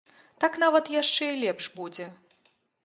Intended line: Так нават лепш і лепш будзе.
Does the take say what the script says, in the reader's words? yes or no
no